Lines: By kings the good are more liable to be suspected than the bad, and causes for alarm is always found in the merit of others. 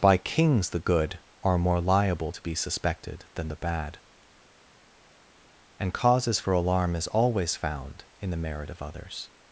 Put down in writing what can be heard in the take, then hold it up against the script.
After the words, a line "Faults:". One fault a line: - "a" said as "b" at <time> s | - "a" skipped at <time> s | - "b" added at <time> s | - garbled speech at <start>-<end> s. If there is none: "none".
By kings the good are more liable to be suspected than the bad, and causes for alarm is always found in the merit of others.
Faults:
none